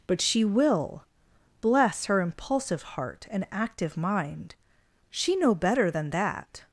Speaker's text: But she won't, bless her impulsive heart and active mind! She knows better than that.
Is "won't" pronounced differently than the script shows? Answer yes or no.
yes